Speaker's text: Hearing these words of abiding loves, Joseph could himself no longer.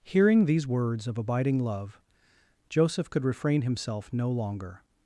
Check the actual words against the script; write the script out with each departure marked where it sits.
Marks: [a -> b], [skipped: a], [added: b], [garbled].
Hearing these words of abiding [loves, -> love] Joseph could [added: refrain] himself no longer.